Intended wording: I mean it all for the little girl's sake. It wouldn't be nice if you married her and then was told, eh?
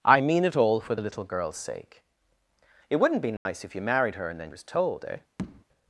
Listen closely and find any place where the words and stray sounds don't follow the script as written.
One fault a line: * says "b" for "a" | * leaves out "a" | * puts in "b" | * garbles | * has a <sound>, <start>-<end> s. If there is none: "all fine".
* has a dropout, 3.4-3.5 s
* has a tap, 5.4-5.6 s